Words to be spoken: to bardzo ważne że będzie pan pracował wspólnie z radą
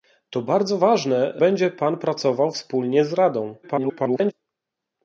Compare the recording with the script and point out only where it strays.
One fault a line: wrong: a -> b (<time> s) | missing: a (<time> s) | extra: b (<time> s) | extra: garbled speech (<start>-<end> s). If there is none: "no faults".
missing: że (1.4 s)
extra: garbled speech (3.6-4.3 s)